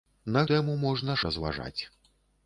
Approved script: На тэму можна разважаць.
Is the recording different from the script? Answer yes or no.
no